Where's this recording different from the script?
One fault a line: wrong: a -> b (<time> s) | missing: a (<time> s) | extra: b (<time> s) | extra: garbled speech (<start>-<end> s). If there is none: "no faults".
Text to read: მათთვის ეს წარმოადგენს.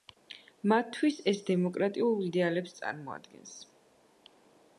extra: დემოკრატიულ იდეალებს (1.5 s)